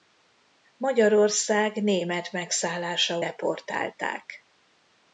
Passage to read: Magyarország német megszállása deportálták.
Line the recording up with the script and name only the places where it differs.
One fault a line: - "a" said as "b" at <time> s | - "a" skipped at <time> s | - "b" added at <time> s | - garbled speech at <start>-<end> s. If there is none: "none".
none